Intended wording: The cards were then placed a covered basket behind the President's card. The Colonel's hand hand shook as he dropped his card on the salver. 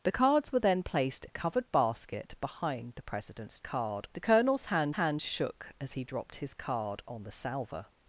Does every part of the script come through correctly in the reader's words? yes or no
yes